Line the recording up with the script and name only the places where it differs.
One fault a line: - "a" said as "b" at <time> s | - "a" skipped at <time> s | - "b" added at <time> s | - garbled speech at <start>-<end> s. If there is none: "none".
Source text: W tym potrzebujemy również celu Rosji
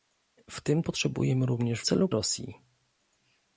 none